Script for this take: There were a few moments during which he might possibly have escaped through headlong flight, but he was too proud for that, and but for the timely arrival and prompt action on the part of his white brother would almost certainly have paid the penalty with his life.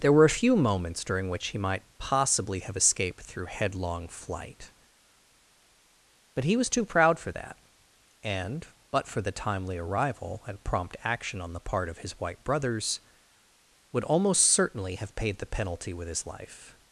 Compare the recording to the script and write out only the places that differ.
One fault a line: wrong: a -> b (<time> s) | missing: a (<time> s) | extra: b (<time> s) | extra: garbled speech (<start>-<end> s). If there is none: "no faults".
wrong: brother -> brothers (12.5 s)